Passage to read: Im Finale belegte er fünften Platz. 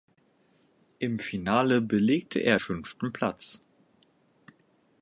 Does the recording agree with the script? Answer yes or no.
yes